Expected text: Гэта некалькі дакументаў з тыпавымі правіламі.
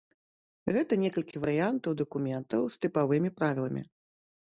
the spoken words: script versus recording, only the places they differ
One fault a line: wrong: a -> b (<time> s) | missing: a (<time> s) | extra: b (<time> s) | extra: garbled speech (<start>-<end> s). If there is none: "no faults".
extra: варыянтаў (1.4 s)